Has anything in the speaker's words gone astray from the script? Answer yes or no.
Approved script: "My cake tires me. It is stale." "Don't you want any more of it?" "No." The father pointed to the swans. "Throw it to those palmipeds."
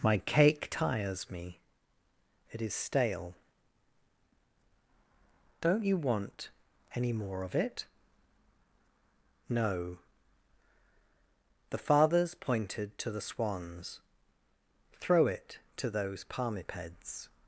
yes